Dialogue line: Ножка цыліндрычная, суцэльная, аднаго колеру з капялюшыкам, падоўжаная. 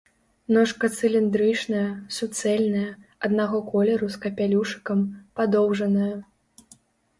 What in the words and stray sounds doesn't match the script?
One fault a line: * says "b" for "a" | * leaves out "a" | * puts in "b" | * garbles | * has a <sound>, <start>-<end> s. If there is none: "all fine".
all fine